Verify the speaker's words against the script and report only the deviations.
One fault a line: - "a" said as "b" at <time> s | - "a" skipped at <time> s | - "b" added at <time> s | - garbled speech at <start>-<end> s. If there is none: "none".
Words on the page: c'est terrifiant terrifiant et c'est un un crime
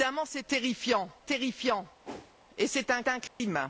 none